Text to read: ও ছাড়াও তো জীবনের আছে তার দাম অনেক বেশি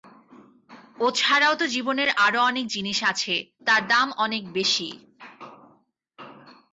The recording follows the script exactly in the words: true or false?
false